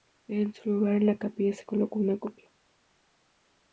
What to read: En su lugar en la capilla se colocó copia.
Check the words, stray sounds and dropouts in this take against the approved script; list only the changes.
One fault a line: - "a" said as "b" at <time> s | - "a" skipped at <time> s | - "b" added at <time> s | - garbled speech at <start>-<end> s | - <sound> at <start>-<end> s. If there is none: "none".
- "una" added at 2.0 s